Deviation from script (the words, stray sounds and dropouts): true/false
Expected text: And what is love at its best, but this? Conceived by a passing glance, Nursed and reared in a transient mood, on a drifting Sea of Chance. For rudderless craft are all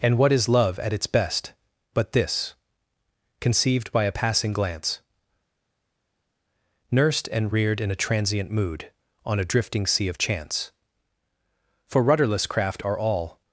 false